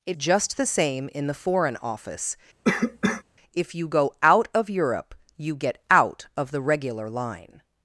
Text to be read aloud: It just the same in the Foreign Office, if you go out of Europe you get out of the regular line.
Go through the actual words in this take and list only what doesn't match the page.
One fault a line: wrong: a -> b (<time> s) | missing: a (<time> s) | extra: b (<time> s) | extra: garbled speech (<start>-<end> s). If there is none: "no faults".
no faults